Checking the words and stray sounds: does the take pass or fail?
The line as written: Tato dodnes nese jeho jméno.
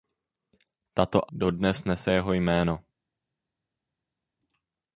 pass